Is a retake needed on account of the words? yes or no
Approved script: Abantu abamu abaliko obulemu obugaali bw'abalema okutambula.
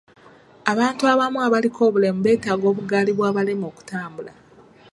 yes